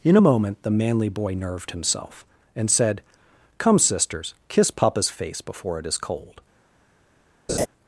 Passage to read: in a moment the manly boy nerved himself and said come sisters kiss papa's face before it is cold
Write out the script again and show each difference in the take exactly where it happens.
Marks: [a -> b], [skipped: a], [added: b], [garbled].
in a moment the manly boy nerved himself and said come sisters kiss papa's face before it is cold